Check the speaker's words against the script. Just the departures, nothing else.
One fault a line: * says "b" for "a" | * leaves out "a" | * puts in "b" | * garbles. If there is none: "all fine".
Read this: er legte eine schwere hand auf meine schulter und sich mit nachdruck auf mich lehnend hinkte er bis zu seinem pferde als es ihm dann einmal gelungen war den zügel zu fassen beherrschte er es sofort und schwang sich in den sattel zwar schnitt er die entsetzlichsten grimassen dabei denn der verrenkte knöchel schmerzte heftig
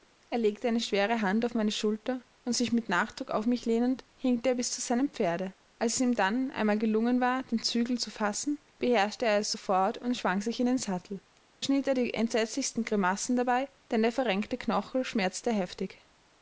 * leaves out "zwar"